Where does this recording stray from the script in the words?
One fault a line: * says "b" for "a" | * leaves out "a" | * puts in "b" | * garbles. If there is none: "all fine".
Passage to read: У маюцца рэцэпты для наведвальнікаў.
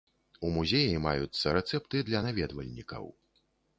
* puts in "музеі"